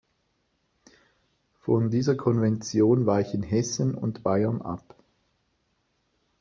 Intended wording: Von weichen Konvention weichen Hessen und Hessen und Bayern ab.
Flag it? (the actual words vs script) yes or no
yes